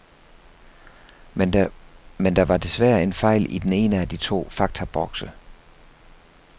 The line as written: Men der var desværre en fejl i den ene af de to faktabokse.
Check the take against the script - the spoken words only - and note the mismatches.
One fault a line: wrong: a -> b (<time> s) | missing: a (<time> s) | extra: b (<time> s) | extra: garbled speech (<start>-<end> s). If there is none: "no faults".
no faults